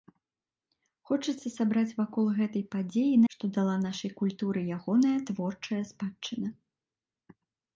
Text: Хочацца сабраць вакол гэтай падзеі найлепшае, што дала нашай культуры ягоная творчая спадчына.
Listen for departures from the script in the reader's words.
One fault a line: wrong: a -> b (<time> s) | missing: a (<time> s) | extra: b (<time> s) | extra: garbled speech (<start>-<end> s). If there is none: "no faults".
missing: найлепшае (3.2 s)